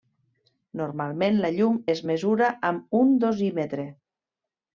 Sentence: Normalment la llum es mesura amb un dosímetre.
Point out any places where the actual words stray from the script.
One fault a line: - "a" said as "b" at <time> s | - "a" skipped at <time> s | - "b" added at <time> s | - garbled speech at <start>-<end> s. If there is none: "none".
none